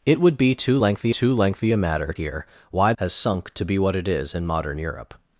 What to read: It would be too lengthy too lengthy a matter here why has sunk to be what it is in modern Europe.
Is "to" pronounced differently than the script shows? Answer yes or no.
no